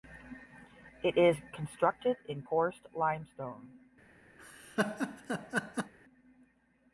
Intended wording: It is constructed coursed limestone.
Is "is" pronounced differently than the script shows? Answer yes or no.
no